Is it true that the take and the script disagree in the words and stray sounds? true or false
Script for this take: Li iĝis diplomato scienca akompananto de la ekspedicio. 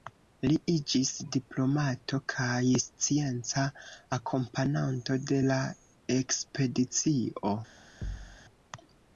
true